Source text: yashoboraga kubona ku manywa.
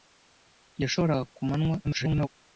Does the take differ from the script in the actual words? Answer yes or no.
yes